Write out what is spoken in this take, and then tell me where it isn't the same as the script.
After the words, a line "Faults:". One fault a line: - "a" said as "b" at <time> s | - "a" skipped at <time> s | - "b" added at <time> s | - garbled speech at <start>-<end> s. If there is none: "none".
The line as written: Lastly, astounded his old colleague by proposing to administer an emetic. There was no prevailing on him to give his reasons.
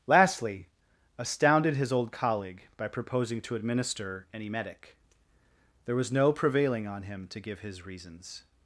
Lastly, astounded his old colleague by proposing to administer an emetic. There was no prevailing on him to give his reasons.
Faults:
none